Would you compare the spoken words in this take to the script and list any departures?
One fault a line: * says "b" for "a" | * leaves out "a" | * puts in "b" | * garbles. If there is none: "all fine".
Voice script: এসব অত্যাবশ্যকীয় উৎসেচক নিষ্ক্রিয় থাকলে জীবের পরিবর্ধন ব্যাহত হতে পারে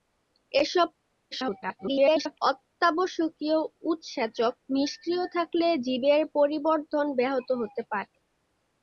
* garbles